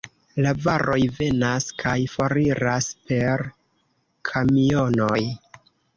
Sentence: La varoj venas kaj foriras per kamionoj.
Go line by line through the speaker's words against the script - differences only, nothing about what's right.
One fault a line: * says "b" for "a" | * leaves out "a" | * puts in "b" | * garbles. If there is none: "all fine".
all fine